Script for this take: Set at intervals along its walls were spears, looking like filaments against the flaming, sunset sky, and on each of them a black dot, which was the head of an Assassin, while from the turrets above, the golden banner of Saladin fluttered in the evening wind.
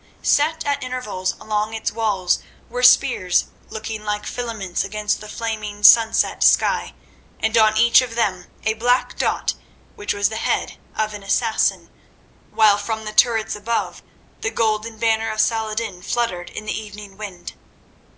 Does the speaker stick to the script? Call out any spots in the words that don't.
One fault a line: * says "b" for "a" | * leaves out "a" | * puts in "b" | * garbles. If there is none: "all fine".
all fine